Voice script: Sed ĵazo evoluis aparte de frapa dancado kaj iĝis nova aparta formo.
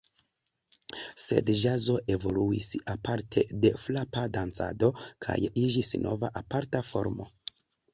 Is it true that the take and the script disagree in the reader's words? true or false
false